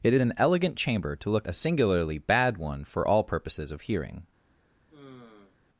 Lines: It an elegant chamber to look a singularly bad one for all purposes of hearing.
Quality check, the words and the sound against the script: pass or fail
fail